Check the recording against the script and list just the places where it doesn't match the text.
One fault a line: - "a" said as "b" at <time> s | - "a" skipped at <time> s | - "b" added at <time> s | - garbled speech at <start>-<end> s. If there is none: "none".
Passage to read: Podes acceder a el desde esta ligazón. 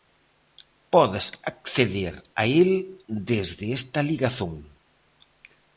none